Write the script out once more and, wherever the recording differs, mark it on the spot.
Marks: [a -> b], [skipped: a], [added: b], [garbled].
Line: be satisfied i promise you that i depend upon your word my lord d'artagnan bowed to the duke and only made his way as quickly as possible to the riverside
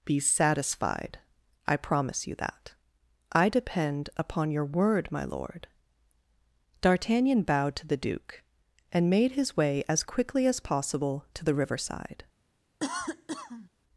be satisfied i promise you that i depend upon your word my lord d'artagnan bowed to the duke and [skipped: only] made his way as quickly as possible to the riverside